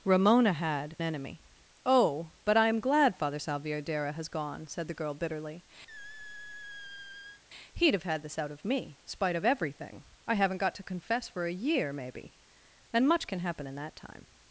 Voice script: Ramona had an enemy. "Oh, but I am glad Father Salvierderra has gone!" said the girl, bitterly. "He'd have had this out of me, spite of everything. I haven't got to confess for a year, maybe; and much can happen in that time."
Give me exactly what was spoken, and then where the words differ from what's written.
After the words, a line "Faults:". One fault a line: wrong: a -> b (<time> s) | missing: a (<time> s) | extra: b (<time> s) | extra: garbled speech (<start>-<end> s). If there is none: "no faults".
Ramona had enemy. "Oh, but I am glad Father Salvierderra has gone!" said the girl, bitterly. "He'd have had this out of me, spite of everything. I haven't got to confess for a year, maybe; and much can happen in that time."
Faults:
missing: an (1.0 s)